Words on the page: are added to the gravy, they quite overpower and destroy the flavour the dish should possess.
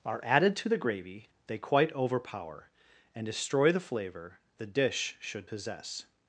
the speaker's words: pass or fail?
pass